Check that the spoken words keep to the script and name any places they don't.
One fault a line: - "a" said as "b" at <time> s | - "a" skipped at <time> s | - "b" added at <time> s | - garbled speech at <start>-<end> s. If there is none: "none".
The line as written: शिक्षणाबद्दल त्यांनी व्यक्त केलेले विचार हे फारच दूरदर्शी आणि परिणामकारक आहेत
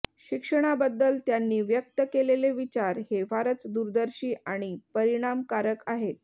none